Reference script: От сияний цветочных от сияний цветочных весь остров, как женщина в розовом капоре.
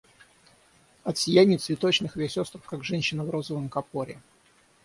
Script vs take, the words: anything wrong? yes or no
yes